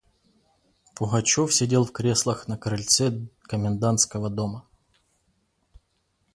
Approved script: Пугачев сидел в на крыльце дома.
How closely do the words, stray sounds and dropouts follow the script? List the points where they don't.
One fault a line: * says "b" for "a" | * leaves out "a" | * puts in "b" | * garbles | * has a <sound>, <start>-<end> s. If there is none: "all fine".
* puts in "креслах"
* puts in "комендантского"